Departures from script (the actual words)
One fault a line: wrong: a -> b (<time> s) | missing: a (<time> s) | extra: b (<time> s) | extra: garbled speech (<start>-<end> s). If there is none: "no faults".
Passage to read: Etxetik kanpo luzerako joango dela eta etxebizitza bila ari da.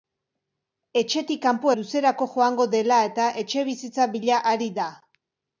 no faults